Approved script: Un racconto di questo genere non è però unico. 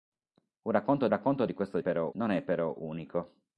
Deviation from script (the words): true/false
true